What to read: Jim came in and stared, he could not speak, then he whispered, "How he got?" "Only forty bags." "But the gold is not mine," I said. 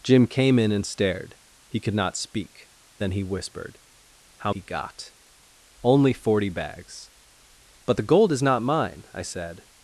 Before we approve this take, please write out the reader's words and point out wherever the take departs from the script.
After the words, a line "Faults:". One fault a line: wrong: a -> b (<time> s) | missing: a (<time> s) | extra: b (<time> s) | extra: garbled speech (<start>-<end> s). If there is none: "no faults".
Jim came in and stared, he could not speak, then he whispered, "How he got?" "Only forty bags." "But the gold is not mine," I said.
Faults:
no faults